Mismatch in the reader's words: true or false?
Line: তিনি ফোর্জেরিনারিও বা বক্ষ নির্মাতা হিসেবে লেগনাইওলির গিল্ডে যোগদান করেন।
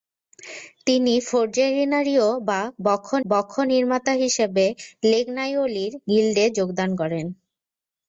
true